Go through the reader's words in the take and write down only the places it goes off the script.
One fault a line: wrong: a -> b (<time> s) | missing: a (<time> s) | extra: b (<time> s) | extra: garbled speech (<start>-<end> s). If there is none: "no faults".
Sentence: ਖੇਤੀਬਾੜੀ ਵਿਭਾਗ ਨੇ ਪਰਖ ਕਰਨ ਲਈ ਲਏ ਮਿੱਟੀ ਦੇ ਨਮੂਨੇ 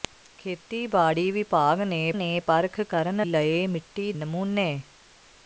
extra: ਨੇ (2.1 s)
missing: ਲਈ (3.3 s)
missing: ਦੇ (4.1 s)